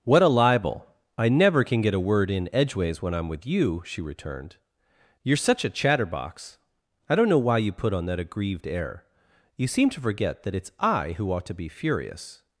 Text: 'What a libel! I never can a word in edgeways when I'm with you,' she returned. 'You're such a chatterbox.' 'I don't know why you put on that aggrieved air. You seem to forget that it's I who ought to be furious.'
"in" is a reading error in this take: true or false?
false